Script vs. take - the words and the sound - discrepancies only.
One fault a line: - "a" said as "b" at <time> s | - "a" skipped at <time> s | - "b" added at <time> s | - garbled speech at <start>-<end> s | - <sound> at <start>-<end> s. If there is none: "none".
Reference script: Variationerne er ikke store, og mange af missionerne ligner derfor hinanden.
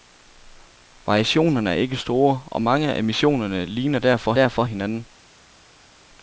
- "derfor" added at 4.3 s